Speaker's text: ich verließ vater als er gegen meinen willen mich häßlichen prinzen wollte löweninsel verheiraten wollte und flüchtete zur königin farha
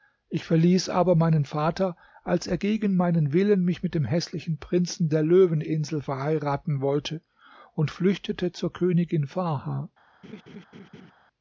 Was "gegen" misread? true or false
false